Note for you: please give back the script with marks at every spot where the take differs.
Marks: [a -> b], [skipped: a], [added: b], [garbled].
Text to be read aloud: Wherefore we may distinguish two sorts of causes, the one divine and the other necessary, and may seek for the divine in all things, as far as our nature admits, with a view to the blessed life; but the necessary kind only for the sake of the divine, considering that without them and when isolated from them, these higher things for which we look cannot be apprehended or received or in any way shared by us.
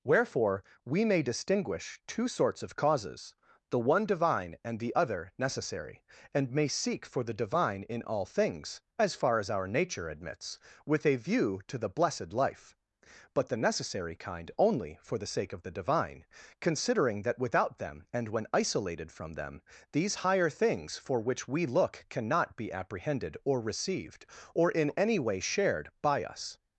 Wherefore we may distinguish two sorts of causes, the one divine and the other necessary, and may seek for the divine in all things, as far as our nature admits, with a view to the blessed life; but the necessary kind only for the sake of the divine, considering that without them and when isolated from them, these higher things for which we look cannot be apprehended or received or in any way shared by us.